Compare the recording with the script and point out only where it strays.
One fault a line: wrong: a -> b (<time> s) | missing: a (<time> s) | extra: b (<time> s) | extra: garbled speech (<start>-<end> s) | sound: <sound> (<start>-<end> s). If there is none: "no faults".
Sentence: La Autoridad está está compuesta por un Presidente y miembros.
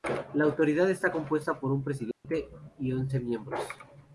missing: está (1.1 s)
sound: dropout (2.1-2.2 s)
extra: once (2.9 s)